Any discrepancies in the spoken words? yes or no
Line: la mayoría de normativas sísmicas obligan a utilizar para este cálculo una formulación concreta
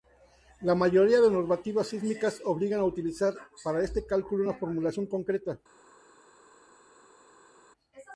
no